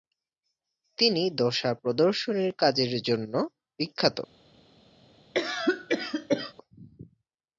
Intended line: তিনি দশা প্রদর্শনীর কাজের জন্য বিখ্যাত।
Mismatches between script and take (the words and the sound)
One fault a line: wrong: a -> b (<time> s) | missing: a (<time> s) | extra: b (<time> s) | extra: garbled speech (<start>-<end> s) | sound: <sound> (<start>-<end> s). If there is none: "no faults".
sound: cough (5.3-6.5 s)